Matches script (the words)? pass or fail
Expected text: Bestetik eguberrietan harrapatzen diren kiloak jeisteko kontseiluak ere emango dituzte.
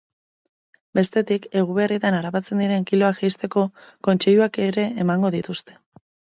pass